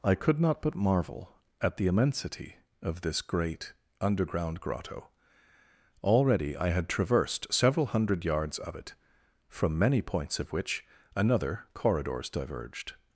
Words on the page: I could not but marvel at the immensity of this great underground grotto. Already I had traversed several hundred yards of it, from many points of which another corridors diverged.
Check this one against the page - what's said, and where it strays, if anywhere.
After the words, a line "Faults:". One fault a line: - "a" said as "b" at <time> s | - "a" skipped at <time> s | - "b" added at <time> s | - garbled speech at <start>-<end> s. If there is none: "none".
I could not but marvel at the immensity of this great underground grotto. Already I had traversed several hundred yards of it, from many points of which another corridors diverged.
Faults:
none